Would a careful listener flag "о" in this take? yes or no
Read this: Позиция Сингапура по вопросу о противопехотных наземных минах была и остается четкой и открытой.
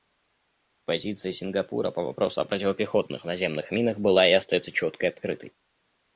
no